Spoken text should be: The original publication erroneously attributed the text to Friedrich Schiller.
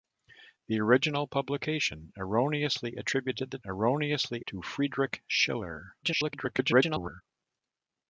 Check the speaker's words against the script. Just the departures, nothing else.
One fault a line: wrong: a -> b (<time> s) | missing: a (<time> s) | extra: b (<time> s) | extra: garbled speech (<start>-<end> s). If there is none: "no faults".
wrong: text -> erroneously (3.7 s)
extra: garbled speech (6.0-7.2 s)